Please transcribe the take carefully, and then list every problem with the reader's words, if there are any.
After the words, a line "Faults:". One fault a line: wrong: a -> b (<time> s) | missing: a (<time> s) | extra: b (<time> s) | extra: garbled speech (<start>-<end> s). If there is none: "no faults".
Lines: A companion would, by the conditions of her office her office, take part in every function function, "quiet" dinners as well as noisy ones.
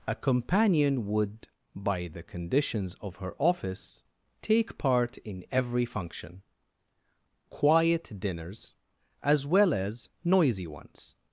A companion would, by the conditions of her office, take part in every function, "quiet" dinners as well as noisy ones.
Faults:
missing: her office (4.0 s)
missing: function (6.4 s)